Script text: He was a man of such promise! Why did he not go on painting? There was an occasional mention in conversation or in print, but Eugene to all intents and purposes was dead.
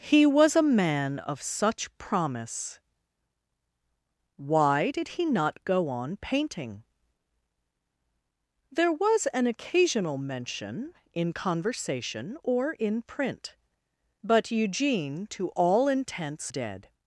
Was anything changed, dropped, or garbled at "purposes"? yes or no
yes